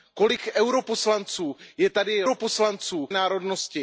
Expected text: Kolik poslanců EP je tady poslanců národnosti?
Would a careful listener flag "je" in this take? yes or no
no